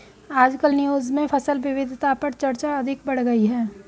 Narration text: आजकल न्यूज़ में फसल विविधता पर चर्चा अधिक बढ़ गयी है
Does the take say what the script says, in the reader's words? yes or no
yes